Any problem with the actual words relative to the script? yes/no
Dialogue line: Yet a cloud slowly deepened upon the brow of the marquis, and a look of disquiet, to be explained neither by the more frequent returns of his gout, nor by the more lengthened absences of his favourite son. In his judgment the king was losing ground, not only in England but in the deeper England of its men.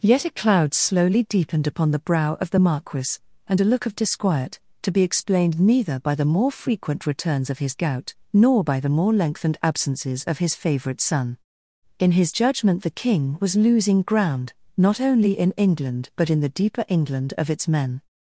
no